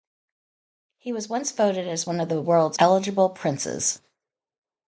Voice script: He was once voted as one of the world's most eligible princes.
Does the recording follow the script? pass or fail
fail